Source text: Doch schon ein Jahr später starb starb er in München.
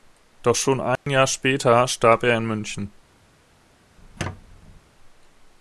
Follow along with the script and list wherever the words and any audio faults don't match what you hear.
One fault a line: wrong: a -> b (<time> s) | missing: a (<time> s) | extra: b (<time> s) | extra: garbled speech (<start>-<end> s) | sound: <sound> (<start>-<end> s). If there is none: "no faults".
sound: dropout (1.0-1.1 s)
missing: starb (2.2 s)
sound: squeak (4.0-4.8 s)